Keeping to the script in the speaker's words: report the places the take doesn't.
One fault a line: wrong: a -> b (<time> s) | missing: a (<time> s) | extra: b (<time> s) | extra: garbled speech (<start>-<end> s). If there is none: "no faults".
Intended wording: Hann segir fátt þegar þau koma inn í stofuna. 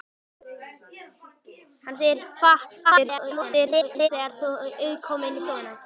extra: garbled speech (2.8-4.1 s)